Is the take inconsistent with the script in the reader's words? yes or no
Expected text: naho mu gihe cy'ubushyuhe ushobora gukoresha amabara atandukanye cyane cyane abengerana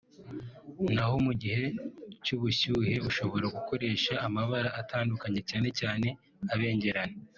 no